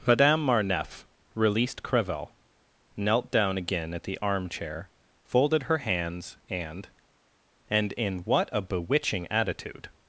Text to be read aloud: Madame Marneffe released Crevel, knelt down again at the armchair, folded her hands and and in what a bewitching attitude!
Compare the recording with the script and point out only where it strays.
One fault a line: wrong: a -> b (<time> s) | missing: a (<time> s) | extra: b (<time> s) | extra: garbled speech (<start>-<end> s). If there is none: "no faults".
no faults